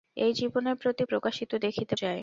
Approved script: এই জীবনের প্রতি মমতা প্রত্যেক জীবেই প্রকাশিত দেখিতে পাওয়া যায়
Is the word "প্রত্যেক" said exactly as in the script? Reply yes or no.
no